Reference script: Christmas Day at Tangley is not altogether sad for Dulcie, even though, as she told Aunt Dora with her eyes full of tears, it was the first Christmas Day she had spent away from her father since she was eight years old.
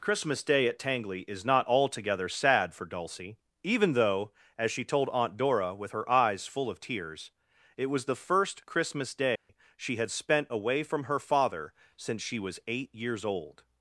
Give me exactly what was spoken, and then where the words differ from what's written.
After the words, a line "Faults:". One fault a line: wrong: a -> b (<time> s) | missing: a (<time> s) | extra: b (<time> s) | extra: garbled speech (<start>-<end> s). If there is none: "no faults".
Christmas Day at Tangley is not altogether sad for Dulcie, even though, as she told Aunt Dora with her eyes full of tears, it was the first Christmas Day she had spent away from her father since she was eight years old.
Faults:
no faults